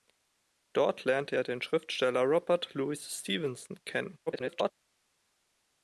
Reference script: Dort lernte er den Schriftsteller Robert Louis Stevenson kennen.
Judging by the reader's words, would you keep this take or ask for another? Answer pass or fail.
fail